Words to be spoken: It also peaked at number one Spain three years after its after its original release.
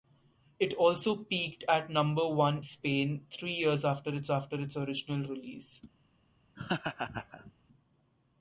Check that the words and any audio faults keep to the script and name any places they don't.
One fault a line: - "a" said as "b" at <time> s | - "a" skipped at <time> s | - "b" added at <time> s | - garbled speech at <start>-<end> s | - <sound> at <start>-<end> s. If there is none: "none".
- laugh at 6.6-7.5 s